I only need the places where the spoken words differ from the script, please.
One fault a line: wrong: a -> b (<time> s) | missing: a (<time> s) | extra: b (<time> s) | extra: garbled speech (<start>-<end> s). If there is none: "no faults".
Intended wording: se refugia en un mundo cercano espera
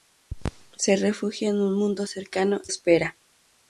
no faults